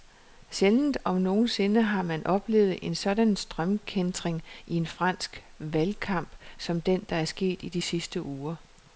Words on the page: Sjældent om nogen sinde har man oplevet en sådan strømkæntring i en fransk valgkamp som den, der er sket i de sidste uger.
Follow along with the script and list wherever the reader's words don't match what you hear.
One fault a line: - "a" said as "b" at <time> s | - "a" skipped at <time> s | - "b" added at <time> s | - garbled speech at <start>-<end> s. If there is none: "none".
none